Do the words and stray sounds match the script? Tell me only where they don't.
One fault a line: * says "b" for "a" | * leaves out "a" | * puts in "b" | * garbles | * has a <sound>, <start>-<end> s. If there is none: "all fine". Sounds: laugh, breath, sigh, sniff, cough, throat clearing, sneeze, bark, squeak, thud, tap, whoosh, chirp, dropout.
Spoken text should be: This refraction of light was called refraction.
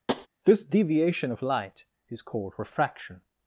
* has a tap, 0.1-0.3 s
* says "deviation" for "refraction"
* says "is" for "was"